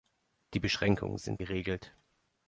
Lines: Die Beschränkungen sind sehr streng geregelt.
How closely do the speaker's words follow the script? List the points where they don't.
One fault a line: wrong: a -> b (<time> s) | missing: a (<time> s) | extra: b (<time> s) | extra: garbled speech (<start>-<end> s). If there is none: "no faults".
missing: sehr streng (1.4 s)